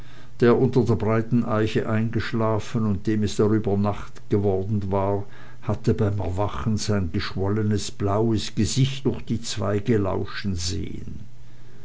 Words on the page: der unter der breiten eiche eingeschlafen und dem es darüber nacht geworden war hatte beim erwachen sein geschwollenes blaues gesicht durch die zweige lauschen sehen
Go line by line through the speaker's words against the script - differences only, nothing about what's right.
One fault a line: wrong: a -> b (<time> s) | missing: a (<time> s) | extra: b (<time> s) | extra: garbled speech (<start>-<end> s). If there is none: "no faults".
no faults